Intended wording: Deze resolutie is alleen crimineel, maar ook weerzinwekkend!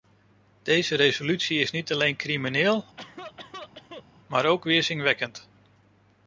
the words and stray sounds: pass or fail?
fail